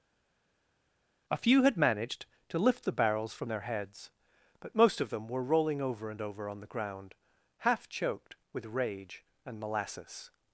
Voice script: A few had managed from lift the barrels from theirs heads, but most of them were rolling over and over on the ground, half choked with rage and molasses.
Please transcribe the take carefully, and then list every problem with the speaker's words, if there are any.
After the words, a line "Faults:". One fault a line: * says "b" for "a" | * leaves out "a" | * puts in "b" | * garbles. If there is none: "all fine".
A few had managed to lift the barrels from their heads, but most of them were rolling over and over on the ground, half choked with rage and molasses.
Faults:
* says "to" for "from"
* says "their" for "theirs"